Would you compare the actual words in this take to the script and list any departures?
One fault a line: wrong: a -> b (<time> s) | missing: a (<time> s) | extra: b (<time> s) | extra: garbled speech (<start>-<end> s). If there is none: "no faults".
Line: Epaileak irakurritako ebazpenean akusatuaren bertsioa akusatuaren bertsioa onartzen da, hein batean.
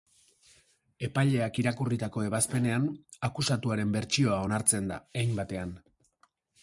missing: akusatuaren bertsioa (4.4 s)